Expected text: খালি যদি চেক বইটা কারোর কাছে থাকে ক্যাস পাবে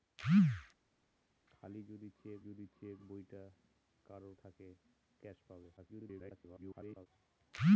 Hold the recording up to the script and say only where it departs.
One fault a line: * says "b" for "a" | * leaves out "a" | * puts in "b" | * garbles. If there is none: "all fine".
* puts in "যদি চেক"
* leaves out "কাছে"
* garbles